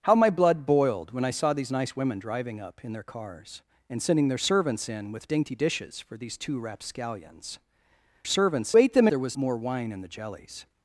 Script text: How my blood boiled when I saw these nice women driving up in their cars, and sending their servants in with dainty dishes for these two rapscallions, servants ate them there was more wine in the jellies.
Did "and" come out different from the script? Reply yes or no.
no